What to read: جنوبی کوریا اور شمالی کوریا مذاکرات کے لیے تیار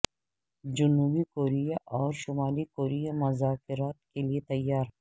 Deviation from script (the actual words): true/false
false